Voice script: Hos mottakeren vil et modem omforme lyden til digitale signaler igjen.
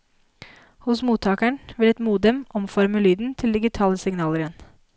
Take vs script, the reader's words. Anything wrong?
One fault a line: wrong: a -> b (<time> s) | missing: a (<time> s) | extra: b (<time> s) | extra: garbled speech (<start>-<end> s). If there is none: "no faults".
no faults